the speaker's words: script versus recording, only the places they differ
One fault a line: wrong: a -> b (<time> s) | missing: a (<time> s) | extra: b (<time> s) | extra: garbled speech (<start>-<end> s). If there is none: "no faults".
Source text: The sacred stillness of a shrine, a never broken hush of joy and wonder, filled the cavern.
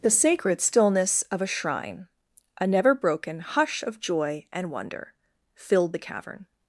no faults